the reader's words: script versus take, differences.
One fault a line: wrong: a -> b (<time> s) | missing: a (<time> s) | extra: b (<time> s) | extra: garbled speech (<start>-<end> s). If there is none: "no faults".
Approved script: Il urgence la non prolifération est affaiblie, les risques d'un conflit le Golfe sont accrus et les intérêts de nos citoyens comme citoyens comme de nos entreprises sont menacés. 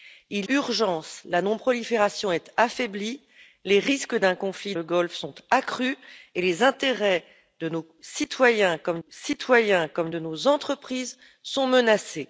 no faults